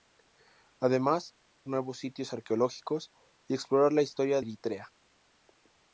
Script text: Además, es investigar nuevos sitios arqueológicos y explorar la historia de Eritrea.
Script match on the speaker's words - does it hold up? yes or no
no